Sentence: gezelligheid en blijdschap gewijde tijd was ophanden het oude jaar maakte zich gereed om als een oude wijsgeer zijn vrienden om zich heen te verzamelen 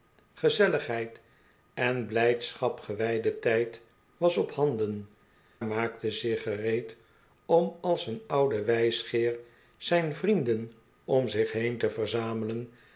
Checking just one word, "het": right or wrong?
wrong